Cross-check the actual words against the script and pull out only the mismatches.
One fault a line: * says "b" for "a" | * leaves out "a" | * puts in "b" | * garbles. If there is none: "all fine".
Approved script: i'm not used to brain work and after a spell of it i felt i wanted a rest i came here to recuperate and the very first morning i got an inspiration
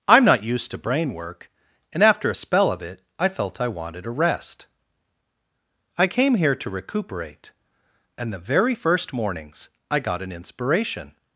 * says "mornings" for "morning"